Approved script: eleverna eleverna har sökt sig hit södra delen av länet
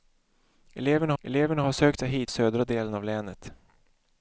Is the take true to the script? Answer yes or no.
yes